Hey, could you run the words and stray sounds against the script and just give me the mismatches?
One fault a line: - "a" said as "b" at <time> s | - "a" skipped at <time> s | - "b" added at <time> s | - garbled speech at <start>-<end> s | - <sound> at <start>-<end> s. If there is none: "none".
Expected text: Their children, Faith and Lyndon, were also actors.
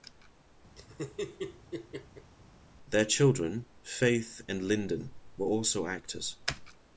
- laugh at 0.8-2.3 s